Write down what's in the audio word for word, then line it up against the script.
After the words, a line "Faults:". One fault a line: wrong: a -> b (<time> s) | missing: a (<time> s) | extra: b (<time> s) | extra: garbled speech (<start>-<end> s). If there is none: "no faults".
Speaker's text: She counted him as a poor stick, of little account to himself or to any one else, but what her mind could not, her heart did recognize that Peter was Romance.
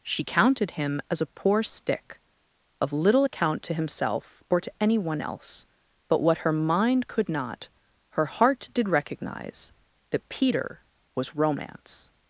She counted him as a poor stick, of little account to himself or to any one else, but what her mind could not, her heart did recognize that Peter was Romance.
Faults:
no faults